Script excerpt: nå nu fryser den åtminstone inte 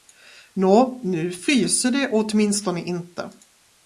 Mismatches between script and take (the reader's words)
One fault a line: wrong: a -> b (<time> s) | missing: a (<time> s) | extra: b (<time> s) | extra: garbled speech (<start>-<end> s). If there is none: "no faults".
wrong: den -> det (1.9 s)